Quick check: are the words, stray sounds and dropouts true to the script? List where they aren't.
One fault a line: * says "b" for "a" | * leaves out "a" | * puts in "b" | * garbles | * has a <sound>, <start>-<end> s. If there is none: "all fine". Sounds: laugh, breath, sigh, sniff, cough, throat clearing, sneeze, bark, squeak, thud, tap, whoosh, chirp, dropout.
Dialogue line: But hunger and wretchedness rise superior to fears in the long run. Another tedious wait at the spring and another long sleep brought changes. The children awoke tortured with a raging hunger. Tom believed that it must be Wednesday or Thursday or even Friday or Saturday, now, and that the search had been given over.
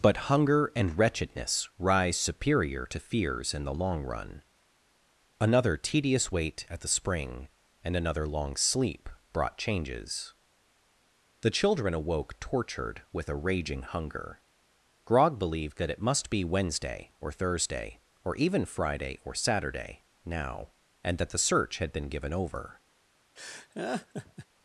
* says "Grog" for "Tom"
* has a laugh, 23.4-24.5 s